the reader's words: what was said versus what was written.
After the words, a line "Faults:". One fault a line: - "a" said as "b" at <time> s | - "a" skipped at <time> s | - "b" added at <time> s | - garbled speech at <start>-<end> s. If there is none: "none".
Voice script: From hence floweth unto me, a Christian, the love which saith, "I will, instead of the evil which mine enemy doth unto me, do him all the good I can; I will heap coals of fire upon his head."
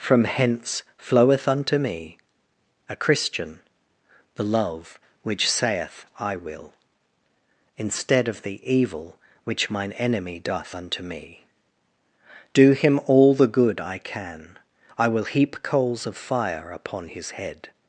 From hence floweth unto me, a Christian, the love which saith, "I will, instead of the evil which mine enemy doth unto me, do him all the good I can; I will heap coals of fire upon his head."
Faults:
none